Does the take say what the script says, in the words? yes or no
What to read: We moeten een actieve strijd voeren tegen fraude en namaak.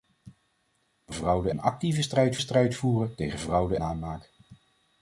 no